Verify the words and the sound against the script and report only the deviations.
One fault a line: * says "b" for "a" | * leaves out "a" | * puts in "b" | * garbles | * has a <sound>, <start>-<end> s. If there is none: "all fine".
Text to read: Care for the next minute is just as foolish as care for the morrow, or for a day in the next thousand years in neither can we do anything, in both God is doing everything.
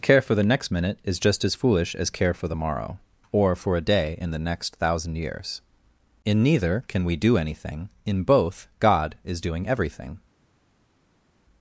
all fine